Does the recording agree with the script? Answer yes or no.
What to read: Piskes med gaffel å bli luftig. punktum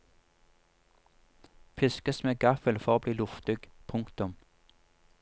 no